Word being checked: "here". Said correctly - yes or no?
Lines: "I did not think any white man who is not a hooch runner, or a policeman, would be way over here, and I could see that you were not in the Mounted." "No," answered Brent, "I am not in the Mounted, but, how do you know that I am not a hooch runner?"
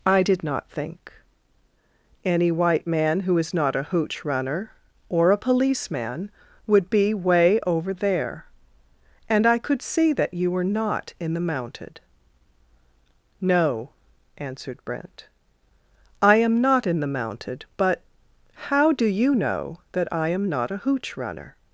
no